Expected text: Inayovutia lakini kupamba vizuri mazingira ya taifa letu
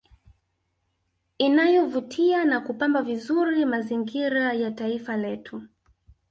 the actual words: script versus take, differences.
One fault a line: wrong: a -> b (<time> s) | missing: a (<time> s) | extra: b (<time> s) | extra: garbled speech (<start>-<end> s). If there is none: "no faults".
wrong: lakini -> na (2.5 s)